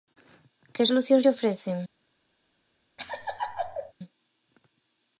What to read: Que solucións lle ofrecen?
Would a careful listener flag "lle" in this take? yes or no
no